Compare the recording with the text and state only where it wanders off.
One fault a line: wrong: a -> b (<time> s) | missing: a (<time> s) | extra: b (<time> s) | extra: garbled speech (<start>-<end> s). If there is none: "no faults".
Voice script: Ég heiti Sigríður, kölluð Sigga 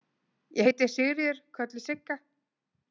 no faults